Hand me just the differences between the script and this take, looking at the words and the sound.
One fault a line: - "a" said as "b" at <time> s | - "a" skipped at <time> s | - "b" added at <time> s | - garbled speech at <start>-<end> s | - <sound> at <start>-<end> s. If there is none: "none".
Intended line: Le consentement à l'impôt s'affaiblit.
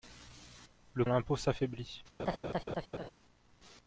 - "consentement" skipped at 1.1 s
- laugh at 2.2-3.1 s